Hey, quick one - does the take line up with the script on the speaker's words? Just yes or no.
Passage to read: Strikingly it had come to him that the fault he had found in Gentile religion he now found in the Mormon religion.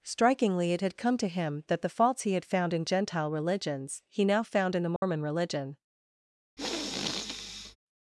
no